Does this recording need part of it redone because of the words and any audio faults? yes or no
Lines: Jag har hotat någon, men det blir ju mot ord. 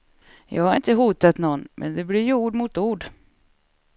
yes